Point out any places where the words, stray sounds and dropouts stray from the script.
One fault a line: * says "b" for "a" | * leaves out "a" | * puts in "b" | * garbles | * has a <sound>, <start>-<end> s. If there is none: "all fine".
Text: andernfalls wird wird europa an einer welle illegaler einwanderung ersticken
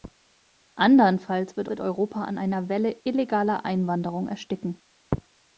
all fine